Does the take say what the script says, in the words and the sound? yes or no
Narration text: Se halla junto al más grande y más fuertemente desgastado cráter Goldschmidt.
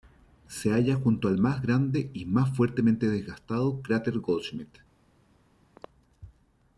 no